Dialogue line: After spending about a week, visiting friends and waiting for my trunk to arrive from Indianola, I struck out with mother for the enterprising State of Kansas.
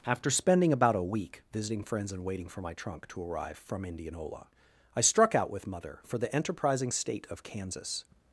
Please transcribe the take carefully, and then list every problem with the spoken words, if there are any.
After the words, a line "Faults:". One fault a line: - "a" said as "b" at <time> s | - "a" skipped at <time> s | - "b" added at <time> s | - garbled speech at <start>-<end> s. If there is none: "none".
After spending about a week, visiting friends and waiting for my trunk to arrive from Indianola, I struck out with mother for the enterprising State of Kansas.
Faults:
none